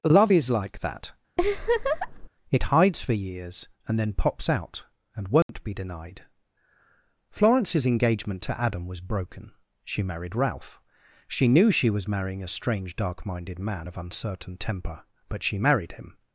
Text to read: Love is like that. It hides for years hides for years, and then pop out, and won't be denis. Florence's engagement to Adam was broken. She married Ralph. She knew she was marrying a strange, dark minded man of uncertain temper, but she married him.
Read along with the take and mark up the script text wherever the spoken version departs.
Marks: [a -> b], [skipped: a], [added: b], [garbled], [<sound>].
Love is like that. [laugh] It hides for years [skipped: hides for years,] and then [pop -> pops] out, and won't [dropout] be [denis. -> denied] Florence's engagement to Adam was broken. She married Ralph. She knew she was marrying a strange, dark minded man of uncertain temper, but she married him.